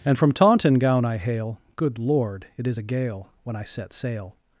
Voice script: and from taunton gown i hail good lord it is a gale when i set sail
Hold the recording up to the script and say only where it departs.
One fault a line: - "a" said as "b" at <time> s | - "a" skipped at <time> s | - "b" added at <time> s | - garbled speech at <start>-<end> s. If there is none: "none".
none